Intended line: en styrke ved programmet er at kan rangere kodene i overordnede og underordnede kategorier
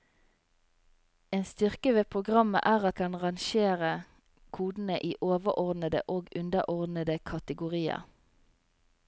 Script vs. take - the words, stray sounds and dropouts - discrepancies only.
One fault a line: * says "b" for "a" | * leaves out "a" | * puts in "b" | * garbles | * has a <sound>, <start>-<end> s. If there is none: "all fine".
all fine